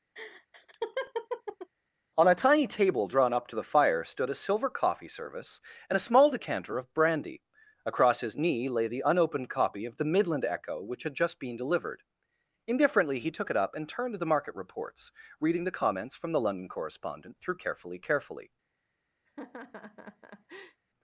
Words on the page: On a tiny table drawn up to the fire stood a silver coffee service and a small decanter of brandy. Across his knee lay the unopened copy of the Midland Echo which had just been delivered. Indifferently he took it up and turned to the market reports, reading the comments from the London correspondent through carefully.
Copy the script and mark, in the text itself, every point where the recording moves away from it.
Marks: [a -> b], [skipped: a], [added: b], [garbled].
On a tiny table drawn up to the fire stood a silver coffee service and a small decanter of brandy. Across his knee lay the unopened copy of the Midland Echo which had just been delivered. Indifferently he took it up and turned to the market reports, reading the comments from the London correspondent through carefully. [added: carefully]